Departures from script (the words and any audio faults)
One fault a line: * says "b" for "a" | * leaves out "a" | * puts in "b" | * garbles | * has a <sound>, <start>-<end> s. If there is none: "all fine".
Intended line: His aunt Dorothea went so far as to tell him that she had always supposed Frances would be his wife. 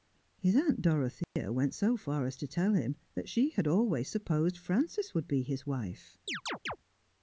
* has a dropout, 1.2-1.4 s
* has a chirp, 6.3-6.8 s